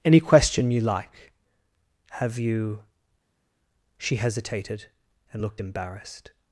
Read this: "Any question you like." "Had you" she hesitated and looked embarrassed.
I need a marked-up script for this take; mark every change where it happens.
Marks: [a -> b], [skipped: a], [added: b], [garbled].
"Any question you like." ["Had -> Have] you" she hesitated and looked embarrassed.